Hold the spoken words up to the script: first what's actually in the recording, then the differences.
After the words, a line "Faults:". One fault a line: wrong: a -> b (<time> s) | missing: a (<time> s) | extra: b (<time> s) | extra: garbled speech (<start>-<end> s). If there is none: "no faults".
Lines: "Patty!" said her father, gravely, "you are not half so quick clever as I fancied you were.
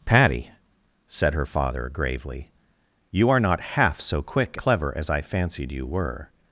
"Patty!" said her father, gravely, "you are not half so quick clever as I fancied you were.
Faults:
no faults